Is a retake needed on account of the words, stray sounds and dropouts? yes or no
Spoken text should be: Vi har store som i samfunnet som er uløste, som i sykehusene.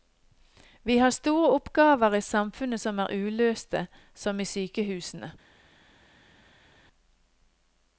yes